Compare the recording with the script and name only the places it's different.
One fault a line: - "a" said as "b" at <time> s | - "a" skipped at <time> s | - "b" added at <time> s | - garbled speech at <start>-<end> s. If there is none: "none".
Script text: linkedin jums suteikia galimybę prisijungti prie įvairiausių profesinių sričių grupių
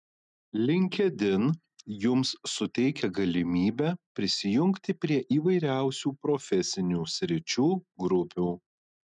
none